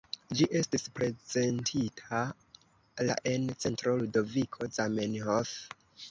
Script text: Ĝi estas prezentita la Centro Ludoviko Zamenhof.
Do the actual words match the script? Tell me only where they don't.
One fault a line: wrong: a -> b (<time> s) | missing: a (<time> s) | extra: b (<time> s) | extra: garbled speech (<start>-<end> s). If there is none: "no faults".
wrong: estas -> estis (0.6 s)
extra: en (3.3 s)